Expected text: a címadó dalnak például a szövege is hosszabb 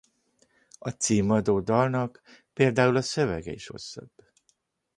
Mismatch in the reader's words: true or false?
false